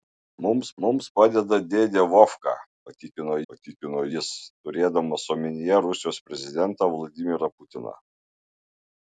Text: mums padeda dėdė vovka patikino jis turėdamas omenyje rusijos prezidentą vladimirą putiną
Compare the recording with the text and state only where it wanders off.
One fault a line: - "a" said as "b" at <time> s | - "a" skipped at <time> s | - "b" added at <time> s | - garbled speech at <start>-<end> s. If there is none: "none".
- "mums" added at 0.8 s
- "patikino" added at 3.5 s